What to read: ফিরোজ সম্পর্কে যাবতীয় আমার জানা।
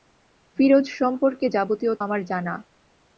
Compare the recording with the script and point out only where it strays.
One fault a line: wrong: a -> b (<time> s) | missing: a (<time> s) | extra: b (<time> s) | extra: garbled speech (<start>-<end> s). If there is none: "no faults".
no faults